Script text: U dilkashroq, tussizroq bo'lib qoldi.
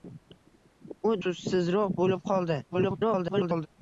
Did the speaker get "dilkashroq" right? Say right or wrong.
wrong